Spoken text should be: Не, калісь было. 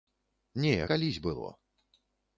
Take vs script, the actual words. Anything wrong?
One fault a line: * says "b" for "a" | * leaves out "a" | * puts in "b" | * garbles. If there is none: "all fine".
all fine